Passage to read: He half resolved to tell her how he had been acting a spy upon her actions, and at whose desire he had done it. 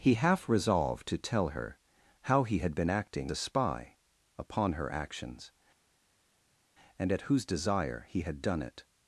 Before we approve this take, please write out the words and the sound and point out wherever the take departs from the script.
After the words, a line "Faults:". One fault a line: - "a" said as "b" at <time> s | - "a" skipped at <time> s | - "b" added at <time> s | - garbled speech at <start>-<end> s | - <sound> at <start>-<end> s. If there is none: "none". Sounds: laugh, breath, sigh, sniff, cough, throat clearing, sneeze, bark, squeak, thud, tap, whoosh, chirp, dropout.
He half resolved to tell her how he had been acting a spy upon her actions, and at whose desire he had done it.
Faults:
none